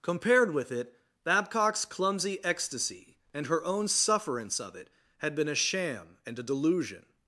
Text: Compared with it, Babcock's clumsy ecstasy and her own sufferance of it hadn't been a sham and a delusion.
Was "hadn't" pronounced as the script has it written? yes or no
no